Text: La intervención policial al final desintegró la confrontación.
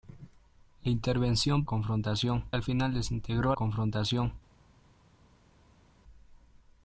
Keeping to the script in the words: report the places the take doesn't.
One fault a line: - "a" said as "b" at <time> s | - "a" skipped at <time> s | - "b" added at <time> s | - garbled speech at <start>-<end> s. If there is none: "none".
- "policial" said as "confrontación" at 1.6 s
- "la" skipped at 3.6 s